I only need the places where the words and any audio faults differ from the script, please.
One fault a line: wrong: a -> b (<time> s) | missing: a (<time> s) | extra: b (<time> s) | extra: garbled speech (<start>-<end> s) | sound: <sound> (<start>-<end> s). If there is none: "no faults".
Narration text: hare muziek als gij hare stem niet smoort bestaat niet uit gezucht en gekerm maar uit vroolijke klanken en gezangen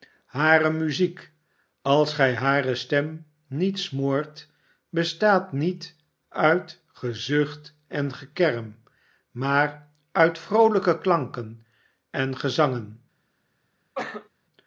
sound: cough (13.9-14.3 s)